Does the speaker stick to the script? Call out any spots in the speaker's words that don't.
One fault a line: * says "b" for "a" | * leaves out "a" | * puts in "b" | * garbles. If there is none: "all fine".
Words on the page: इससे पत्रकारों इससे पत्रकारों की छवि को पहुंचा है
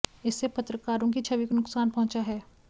* leaves out "इससे पत्रकारों"
* puts in "नुकसान"